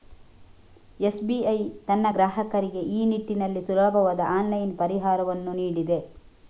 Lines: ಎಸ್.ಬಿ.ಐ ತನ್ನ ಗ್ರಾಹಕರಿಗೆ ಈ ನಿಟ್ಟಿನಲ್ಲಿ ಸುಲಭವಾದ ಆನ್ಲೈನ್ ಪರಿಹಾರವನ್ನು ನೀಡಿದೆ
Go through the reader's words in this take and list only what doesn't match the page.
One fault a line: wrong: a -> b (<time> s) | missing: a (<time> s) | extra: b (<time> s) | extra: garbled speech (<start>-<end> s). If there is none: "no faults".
no faults